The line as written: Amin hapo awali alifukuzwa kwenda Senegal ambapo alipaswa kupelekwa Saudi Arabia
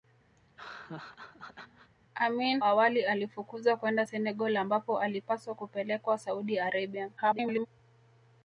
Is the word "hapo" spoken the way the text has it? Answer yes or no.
no